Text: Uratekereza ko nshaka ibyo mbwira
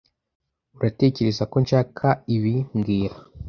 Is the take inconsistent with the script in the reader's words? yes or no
yes